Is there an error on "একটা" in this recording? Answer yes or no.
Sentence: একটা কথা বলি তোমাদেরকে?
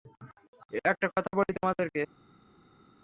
no